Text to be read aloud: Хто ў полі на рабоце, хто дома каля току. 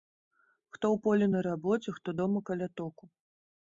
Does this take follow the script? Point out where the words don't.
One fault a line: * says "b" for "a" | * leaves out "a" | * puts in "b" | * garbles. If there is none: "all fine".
all fine